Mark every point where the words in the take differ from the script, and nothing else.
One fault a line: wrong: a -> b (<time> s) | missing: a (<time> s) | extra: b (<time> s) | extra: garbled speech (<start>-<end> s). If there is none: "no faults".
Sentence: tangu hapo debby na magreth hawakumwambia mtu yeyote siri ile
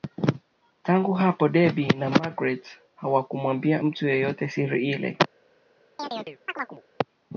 no faults